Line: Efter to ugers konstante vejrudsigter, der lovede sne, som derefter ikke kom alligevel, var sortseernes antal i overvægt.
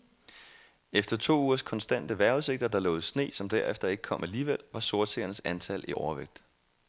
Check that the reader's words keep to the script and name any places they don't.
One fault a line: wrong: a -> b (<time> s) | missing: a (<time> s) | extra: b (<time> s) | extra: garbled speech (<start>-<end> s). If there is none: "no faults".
no faults